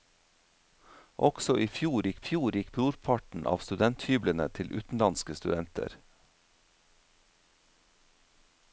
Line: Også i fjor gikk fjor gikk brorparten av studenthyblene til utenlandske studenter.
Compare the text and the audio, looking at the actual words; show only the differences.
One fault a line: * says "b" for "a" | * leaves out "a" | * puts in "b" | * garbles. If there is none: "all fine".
all fine